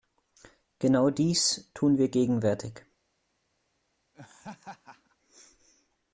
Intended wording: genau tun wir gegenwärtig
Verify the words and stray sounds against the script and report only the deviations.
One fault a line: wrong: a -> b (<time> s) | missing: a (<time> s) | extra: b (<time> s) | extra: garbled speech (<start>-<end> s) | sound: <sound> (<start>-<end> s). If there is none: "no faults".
extra: dies (1.1 s)
sound: laugh (4.1-5.2 s)